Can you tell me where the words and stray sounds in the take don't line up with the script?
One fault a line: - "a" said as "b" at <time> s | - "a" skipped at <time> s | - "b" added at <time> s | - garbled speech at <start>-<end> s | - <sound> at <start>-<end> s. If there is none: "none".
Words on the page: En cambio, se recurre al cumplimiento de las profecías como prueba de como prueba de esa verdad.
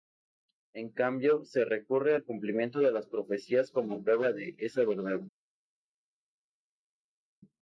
- "como prueba de" skipped at 4.5 s